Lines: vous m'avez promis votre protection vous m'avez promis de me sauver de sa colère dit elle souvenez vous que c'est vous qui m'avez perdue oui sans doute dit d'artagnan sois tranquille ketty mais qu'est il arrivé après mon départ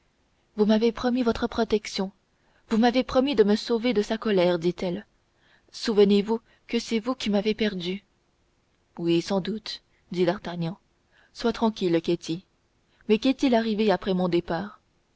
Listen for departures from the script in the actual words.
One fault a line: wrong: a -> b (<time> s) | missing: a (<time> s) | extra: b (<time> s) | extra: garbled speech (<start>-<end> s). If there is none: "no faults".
no faults